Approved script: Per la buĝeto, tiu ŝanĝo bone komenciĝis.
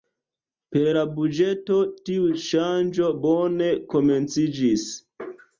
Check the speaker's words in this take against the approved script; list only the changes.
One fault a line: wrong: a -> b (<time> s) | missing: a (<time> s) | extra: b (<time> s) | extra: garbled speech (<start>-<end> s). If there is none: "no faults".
no faults